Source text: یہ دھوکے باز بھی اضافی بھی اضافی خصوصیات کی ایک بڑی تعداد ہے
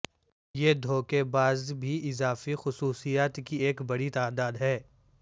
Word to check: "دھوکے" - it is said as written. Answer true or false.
true